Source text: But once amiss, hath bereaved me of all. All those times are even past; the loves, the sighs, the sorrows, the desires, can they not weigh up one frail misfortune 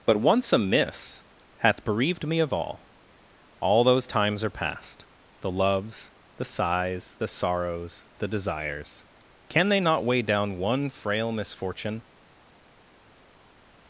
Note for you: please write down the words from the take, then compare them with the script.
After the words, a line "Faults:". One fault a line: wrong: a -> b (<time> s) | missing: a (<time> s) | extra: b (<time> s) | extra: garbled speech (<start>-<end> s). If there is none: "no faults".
But once amiss, hath bereaved me of all. All those times are past; the loves, the sighs, the sorrows, the desires, can they not weigh down one frail misfortune
Faults:
missing: even (4.5 s)
wrong: up -> down (10.2 s)